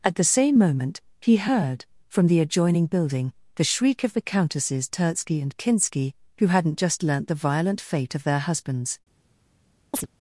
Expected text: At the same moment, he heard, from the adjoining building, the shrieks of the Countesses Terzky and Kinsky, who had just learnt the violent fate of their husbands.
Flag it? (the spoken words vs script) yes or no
yes